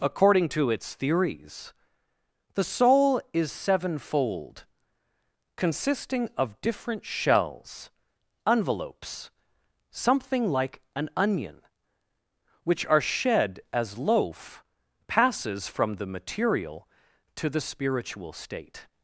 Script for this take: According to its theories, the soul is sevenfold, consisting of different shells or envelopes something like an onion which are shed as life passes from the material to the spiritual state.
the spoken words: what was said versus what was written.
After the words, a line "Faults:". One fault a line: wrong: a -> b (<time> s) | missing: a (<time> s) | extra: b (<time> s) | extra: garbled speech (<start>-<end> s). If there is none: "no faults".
According to its theories, the soul is sevenfold, consisting of different shells envelopes something like an onion which are shed as loaf passes from the material to the spiritual state.
Faults:
missing: or (7.9 s)
wrong: life -> loaf (14.0 s)